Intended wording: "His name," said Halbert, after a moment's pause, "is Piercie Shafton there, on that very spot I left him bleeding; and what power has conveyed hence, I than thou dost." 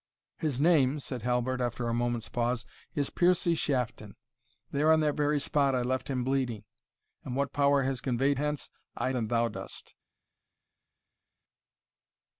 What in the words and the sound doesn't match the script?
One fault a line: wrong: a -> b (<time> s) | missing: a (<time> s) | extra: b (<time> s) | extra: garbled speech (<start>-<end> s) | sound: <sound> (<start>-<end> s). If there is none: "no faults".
no faults